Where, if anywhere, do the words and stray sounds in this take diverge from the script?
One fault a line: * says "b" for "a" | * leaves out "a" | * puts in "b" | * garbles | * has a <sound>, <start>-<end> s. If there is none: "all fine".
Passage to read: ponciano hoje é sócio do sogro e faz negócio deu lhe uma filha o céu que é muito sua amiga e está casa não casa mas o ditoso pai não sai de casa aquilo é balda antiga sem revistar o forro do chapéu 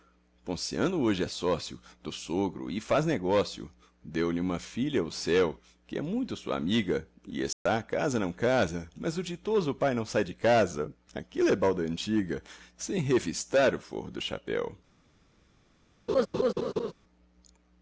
* has a dropout, 7.5-7.7 s
* has a laugh, 16.1-16.9 s